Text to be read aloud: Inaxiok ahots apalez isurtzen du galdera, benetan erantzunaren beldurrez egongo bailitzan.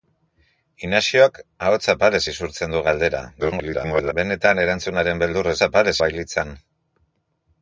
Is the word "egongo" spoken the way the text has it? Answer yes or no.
no